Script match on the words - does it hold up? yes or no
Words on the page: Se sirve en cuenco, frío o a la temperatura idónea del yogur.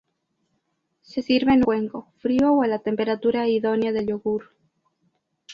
yes